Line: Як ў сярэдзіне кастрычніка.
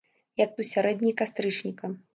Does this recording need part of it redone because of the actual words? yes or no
no